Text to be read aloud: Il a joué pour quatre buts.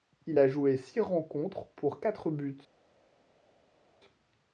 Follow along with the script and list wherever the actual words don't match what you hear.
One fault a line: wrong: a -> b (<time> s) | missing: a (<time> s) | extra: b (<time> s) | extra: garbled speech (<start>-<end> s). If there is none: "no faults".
extra: six rencontres (0.8 s)